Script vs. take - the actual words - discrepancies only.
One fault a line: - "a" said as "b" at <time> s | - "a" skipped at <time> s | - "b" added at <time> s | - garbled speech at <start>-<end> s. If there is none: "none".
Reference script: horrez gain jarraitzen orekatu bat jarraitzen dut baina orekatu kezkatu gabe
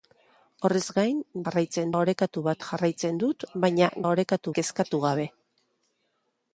none